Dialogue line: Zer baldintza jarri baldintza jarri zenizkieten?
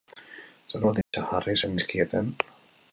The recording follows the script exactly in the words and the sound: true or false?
false